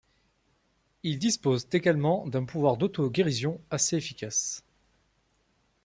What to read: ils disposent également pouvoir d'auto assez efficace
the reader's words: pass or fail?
fail